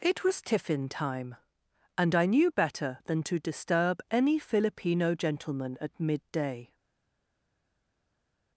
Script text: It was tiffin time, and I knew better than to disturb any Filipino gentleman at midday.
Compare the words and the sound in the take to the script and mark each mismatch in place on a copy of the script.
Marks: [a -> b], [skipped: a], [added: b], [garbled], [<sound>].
It was tiffin time, and I knew better than to disturb any Filipino gentleman at midday.